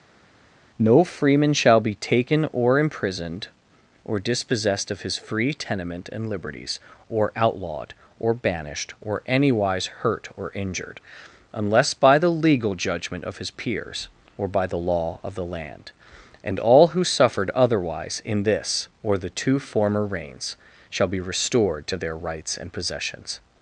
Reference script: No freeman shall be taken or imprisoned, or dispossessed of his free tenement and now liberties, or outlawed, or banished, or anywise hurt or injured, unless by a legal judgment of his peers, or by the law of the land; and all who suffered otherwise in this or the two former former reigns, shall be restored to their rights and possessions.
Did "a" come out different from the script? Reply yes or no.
yes